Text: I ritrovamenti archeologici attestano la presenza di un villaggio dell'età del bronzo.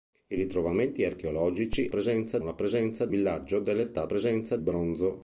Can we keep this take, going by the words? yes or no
no